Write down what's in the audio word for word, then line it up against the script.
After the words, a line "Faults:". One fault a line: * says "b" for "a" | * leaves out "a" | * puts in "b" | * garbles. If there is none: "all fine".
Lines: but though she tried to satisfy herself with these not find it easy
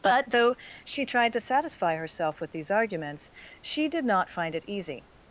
but though she tried to satisfy herself with these arguments she did not find it easy
Faults:
* puts in "arguments she did"